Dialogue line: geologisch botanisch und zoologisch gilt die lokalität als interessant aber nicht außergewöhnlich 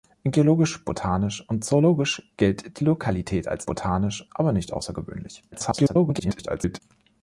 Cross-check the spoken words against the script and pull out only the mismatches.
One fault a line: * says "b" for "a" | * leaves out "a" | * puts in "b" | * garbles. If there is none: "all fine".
* says "botanisch" for "interessant"
* garbles